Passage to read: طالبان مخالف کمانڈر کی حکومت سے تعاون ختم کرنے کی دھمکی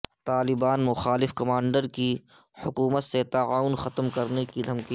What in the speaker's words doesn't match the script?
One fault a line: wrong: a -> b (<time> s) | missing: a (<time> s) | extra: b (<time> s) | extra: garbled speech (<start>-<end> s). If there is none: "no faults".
no faults